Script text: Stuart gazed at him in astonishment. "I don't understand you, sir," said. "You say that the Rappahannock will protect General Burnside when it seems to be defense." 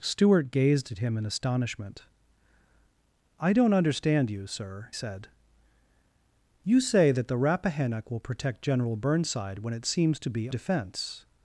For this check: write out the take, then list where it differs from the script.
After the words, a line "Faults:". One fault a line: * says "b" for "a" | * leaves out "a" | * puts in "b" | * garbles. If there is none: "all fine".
Stuart gazed at him in astonishment. "I don't understand you, sir," said. "You say that the Rappahannock will protect General Burnside when it seems to be defense."
Faults:
all fine